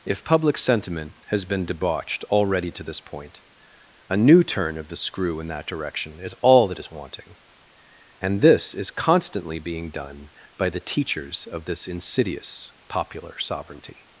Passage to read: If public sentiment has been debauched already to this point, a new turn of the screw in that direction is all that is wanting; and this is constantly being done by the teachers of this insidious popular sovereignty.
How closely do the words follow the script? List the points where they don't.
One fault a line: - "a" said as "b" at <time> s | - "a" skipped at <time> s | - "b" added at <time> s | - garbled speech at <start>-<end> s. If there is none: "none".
none